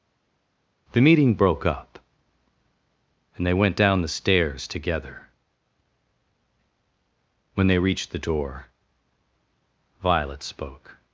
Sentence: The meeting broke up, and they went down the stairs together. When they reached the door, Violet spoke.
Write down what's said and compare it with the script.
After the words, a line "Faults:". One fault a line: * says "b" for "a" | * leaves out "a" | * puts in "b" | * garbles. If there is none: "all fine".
The meeting broke up, and they went down the stairs together. When they reached the door, Violet spoke.
Faults:
all fine